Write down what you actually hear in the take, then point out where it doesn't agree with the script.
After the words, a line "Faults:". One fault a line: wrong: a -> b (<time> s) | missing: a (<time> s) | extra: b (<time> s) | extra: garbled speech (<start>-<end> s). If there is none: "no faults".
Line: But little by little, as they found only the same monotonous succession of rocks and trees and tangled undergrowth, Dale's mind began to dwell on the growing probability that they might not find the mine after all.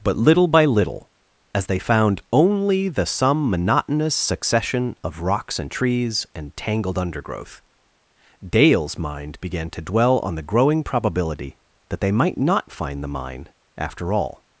But little by little, as they found only the some monotonous succession of rocks and trees and tangled undergrowth, Dale's mind began to dwell on the growing probability that they might not find the mine after all.
Faults:
wrong: same -> some (3.0 s)